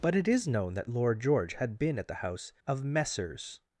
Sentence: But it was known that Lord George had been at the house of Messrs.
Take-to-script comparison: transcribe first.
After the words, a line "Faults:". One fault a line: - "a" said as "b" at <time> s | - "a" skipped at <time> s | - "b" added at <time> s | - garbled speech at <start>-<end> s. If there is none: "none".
But it is known that Lord George had been at the house of Messrs.
Faults:
- "was" said as "is" at 0.3 s